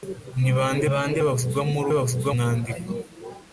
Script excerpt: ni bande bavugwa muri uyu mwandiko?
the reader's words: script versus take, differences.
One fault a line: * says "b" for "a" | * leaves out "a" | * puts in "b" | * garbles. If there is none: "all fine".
* puts in "bande"
* says "bavugwa" for "uyu"